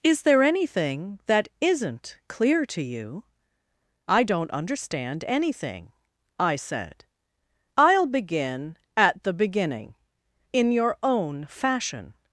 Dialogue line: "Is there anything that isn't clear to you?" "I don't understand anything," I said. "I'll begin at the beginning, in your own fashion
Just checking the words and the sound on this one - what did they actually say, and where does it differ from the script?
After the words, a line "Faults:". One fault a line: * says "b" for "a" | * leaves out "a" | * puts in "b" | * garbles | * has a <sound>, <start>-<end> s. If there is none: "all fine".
"Is there anything that isn't clear to you?" "I don't understand anything," I said. "I'll begin at the beginning, in your own fashion
Faults:
all fine